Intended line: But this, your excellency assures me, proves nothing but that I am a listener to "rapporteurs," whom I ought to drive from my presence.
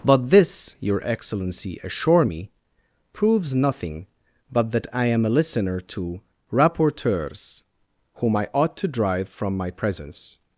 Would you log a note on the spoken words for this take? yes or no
yes